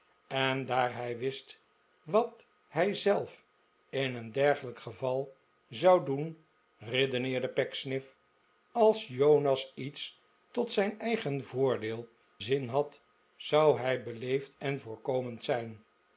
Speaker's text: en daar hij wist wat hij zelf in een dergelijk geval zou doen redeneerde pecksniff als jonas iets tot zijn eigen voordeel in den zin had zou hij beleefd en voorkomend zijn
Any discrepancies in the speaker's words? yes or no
yes